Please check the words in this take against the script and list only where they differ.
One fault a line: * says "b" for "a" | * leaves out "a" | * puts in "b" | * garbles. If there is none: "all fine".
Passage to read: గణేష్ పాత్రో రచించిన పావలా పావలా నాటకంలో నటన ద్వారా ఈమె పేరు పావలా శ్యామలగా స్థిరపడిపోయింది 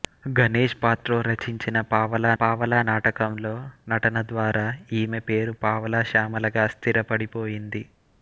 all fine